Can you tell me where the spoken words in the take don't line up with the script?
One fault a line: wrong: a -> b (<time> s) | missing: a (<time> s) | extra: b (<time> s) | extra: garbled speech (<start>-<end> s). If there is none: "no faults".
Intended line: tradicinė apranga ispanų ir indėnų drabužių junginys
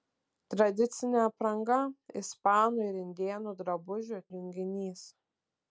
no faults